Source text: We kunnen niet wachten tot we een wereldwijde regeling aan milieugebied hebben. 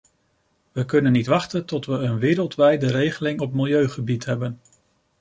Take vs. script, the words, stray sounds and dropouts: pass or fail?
fail